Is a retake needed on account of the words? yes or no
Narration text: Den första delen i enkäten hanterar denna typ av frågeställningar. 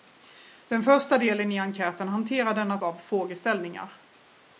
yes